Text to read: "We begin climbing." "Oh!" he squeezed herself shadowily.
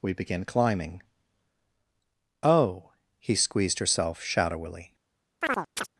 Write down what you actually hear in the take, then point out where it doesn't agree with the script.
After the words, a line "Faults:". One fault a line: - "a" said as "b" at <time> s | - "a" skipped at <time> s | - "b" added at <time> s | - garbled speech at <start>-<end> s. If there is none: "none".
"We begin climbing." "Oh!" he squeezed herself shadowily.
Faults:
none